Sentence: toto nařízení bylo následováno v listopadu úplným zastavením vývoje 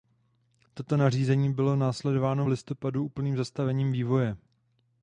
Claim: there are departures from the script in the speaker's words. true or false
false